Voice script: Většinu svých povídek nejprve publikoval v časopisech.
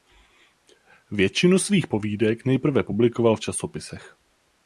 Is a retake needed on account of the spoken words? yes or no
no